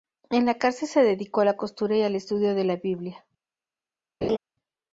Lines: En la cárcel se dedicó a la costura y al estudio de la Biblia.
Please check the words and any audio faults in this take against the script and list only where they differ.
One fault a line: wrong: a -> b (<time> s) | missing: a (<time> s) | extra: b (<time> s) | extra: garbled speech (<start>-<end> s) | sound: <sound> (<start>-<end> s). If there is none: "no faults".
sound: laugh (4.2-4.4 s)